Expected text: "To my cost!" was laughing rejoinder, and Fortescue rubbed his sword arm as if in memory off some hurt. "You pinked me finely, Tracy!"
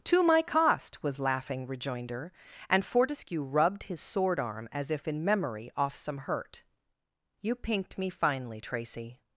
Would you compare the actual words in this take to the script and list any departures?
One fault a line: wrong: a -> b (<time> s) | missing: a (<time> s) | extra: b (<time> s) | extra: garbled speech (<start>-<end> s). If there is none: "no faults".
no faults